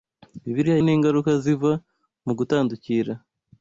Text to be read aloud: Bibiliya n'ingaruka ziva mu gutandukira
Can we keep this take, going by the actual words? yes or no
yes